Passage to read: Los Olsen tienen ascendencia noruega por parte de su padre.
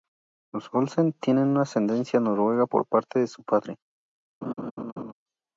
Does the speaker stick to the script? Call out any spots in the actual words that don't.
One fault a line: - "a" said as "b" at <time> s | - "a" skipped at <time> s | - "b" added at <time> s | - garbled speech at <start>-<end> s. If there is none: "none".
none